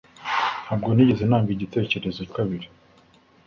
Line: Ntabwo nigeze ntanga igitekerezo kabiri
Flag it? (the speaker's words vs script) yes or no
no